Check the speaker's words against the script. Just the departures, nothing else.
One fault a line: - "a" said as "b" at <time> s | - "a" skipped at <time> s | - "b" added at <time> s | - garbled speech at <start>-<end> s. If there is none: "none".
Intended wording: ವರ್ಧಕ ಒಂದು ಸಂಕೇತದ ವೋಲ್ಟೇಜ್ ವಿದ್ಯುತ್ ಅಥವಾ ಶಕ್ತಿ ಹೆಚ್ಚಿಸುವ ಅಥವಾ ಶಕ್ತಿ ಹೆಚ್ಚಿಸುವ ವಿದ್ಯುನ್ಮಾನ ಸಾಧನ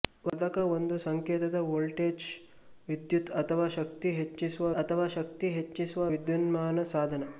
none